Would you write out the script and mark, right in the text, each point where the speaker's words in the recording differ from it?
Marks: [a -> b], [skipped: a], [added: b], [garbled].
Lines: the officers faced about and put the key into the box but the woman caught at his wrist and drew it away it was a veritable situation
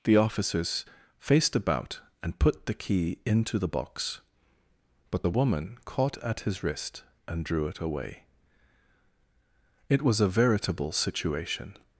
the officers faced about and put the key into the box but the woman caught at his wrist and drew it away it was a veritable situation